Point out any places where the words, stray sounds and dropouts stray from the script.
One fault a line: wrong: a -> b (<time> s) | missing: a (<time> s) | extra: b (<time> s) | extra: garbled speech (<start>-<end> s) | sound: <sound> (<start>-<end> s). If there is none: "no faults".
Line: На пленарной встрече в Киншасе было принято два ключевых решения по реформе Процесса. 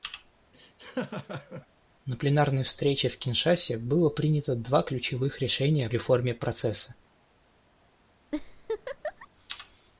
sound: laugh (0.5-1.7 s)
missing: по (5.9 s)
sound: laugh (8.3-9.3 s)